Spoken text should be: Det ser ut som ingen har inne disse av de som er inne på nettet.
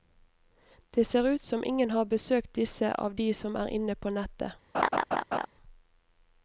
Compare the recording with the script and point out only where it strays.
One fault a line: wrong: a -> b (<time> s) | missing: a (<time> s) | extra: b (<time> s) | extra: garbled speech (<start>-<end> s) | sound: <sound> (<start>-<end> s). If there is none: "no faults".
wrong: inne -> besøkt (2.0 s)
sound: laugh (4.7-5.5 s)